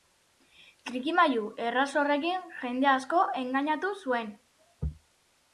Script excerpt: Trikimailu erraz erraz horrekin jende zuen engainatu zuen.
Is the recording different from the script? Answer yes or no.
yes